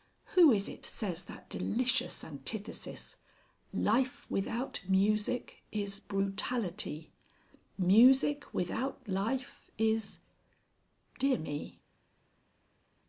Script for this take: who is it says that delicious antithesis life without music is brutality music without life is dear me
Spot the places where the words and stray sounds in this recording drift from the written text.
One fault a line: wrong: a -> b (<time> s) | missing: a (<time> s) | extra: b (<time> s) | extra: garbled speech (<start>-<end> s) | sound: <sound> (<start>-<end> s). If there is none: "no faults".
no faults